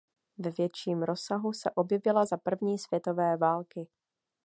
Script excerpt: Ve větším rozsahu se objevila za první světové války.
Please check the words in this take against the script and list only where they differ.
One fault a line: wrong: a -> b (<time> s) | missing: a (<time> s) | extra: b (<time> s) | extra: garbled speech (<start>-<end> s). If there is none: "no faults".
no faults